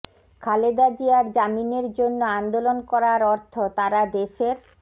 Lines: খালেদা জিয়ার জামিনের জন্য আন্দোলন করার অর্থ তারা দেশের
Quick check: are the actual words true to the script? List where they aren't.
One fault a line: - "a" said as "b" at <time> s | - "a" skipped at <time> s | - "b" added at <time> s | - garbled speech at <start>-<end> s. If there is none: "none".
none